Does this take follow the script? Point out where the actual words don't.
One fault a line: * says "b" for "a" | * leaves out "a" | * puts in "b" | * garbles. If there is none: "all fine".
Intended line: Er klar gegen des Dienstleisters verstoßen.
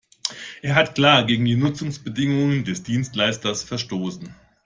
* puts in "hat"
* puts in "die Nutzungsbedingungen"